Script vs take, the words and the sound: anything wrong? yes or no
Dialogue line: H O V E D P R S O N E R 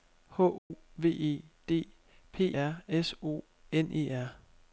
yes